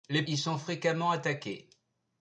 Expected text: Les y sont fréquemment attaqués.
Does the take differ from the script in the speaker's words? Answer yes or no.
no